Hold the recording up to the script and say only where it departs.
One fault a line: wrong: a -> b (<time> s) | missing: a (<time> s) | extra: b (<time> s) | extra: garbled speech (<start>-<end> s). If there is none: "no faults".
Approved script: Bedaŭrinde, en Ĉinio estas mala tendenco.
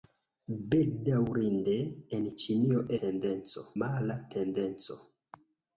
wrong: estas -> tendenco (3.0 s)